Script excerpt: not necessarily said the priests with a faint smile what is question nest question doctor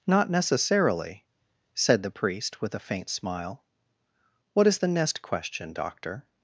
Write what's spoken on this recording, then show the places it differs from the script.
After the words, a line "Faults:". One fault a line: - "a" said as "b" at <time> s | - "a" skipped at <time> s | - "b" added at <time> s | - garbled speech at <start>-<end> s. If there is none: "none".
not necessarily said the priest with a faint smile what is the nest question doctor
Faults:
- "priests" said as "priest" at 2.1 s
- "question" said as "the" at 4.8 s